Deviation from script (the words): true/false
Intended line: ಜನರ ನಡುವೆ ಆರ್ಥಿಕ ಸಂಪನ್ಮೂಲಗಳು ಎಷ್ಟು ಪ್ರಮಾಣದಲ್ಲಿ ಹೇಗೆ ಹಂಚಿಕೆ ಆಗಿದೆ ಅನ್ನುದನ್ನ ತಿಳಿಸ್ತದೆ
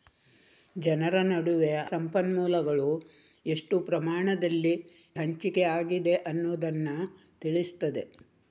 true